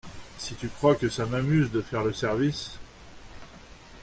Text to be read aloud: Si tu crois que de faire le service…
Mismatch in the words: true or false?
true